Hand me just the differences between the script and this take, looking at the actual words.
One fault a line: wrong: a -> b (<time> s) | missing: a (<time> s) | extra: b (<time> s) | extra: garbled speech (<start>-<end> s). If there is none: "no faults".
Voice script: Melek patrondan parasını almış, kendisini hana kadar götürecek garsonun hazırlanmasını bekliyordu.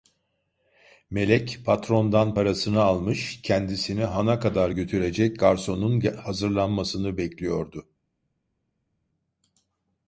no faults